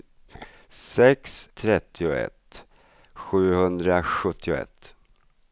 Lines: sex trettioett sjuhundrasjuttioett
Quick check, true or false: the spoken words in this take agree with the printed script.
true